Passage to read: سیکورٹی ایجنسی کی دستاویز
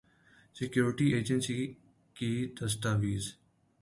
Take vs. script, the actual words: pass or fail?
pass